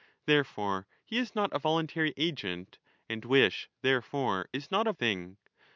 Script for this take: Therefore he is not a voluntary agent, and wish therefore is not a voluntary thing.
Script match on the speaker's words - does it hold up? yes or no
no